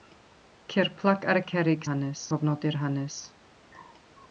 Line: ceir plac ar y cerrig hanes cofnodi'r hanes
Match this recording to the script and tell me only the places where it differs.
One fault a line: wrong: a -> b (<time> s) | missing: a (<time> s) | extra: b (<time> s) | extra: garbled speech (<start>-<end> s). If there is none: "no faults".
no faults